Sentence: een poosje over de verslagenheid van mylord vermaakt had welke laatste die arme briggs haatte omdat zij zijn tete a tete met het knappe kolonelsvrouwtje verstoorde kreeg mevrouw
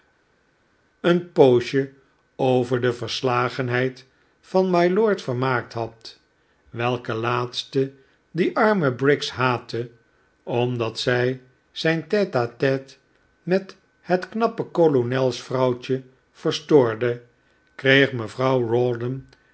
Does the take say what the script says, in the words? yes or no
yes